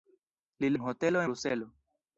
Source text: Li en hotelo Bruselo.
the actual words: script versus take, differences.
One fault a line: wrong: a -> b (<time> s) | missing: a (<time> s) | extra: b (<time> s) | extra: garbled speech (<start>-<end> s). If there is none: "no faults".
no faults